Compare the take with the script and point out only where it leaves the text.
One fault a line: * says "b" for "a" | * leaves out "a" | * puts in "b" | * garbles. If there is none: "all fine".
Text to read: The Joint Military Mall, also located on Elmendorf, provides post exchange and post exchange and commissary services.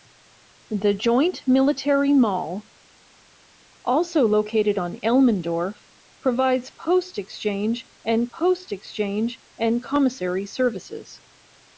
all fine